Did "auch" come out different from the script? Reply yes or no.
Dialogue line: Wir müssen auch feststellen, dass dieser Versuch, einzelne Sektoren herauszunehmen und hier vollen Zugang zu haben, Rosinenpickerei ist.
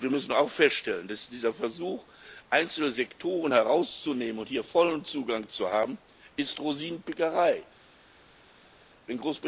no